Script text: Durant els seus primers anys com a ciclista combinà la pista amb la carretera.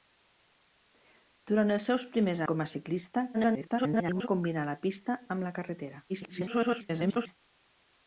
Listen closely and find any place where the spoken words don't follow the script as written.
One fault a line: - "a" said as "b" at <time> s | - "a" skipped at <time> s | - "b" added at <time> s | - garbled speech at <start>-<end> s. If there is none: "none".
- "anys" skipped at 2.4 s
- garbled speech at 3.3-4.3 s
- garbled speech at 6.1-7.4 s